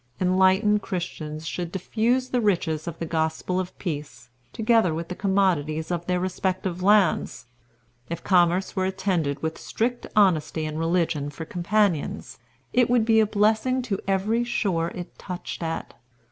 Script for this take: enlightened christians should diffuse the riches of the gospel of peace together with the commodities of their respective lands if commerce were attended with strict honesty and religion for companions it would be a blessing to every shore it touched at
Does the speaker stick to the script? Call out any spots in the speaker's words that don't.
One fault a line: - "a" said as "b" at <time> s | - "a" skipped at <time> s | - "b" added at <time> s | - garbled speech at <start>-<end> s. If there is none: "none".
none